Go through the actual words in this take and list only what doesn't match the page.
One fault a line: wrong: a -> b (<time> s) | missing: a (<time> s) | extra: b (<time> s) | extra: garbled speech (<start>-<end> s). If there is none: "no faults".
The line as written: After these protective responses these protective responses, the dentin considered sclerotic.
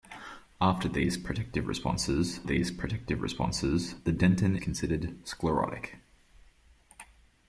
no faults